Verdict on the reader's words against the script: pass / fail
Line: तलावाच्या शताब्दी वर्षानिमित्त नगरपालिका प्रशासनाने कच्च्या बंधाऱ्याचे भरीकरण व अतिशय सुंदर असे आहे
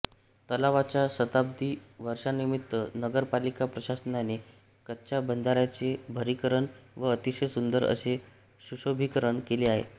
fail